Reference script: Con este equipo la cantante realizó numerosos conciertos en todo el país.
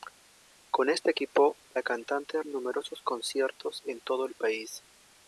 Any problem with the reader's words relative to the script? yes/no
yes